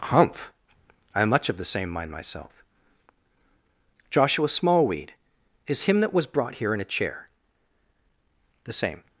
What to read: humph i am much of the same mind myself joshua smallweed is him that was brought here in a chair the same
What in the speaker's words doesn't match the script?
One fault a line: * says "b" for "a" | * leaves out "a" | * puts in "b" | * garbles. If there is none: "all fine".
all fine